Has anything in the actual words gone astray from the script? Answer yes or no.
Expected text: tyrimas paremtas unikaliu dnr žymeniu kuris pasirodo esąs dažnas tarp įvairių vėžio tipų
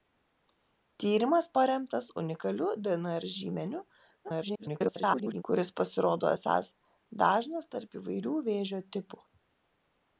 yes